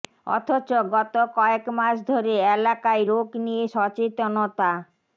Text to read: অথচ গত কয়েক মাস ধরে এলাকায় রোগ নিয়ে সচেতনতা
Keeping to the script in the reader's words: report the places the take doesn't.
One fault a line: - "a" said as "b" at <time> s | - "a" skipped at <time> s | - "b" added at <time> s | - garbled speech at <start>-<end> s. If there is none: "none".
none